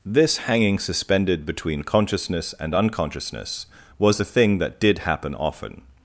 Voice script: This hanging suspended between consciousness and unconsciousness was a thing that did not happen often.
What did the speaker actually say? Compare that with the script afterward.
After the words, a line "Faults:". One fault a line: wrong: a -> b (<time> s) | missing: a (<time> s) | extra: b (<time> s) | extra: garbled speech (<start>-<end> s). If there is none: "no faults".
This hanging suspended between consciousness and unconsciousness was a thing that did happen often.
Faults:
missing: not (5.0 s)